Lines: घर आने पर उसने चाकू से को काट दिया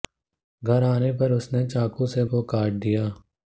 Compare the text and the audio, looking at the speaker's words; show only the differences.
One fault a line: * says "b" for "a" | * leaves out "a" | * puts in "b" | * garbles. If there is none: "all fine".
all fine